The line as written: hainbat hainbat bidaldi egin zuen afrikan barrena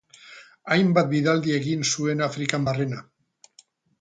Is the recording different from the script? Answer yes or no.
yes